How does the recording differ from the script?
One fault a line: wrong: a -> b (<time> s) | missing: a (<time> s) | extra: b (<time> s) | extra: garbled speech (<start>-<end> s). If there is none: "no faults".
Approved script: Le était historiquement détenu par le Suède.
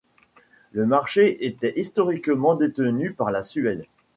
extra: marché (0.9 s)
wrong: le -> la (3.3 s)